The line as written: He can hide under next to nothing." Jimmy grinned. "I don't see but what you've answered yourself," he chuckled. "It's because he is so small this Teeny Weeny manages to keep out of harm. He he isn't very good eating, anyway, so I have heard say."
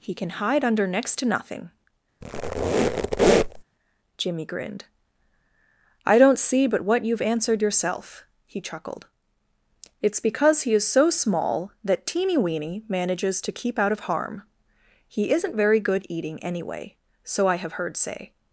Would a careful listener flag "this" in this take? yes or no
yes